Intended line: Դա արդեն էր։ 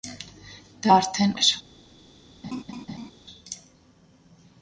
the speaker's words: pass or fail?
pass